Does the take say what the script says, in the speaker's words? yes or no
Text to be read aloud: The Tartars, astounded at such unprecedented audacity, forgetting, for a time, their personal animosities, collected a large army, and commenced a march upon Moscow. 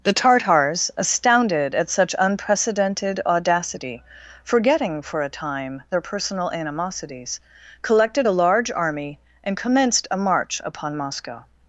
yes